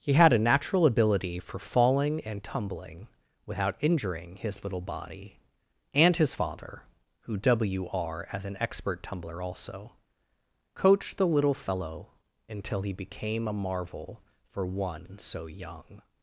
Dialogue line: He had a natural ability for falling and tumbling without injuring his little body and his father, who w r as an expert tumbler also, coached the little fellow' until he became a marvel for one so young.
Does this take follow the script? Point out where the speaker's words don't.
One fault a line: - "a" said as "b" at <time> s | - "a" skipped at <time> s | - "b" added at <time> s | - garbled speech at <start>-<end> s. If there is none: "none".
none